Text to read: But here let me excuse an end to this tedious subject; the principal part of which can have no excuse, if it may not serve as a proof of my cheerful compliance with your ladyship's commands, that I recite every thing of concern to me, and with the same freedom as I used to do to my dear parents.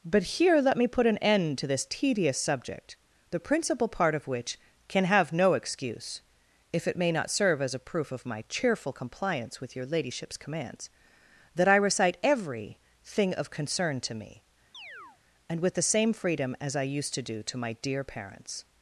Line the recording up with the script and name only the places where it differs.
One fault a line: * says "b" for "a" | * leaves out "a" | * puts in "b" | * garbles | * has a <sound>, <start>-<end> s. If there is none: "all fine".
* says "put" for "excuse"
* has a chirp, 14.7-15.2 s